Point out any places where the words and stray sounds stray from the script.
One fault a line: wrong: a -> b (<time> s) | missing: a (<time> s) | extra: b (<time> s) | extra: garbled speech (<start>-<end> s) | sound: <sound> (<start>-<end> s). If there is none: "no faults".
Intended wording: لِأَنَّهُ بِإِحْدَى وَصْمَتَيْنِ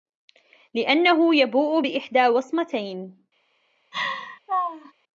extra: يَبُوءُ (1.4 s)
sound: laugh (3.9-4.9 s)